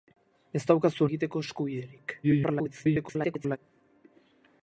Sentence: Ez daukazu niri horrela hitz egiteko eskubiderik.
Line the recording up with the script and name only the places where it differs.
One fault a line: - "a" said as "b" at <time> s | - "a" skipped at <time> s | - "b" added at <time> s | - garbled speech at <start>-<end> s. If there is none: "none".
- "niri horrela hitz" skipped at 1.1 s
- garbled speech at 2.2-3.6 s